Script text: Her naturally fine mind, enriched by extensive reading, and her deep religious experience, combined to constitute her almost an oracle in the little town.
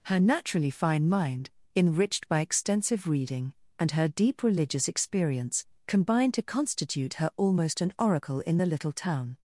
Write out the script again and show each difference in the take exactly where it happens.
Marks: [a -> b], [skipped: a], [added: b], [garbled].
Her naturally fine mind, enriched by extensive reading, and her deep religious experience, combined to constitute her almost an oracle in the little town.